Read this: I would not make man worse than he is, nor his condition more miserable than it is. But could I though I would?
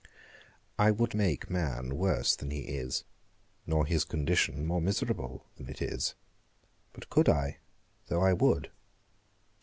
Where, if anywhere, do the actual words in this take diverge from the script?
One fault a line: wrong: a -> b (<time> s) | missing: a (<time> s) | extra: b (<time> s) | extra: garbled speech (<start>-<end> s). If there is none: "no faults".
missing: not (1.1 s)